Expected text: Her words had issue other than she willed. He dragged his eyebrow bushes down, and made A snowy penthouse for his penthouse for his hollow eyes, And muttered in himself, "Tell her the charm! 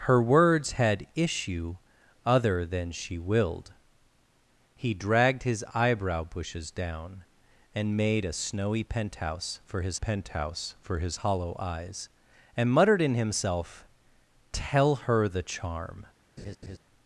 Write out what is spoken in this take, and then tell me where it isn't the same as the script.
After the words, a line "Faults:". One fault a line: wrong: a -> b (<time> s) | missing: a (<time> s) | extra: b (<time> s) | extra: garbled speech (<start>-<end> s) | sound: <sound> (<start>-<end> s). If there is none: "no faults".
Her words had issue other than she willed. He dragged his eyebrow bushes down, and made A snowy penthouse for his penthouse for his hollow eyes, And muttered in himself, "Tell her the charm!
Faults:
sound: laugh (16.4-16.8 s)